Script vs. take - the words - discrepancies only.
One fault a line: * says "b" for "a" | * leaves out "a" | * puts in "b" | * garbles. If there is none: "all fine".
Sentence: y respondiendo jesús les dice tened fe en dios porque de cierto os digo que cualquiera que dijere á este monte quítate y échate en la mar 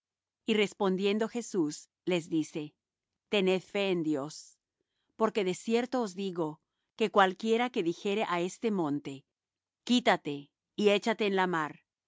all fine